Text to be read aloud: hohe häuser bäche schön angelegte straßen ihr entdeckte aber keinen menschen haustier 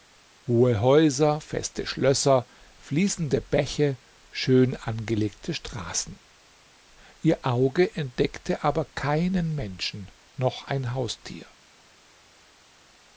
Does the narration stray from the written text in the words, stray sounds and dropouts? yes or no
yes